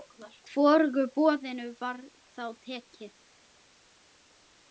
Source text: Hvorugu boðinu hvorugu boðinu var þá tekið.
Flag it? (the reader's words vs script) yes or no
yes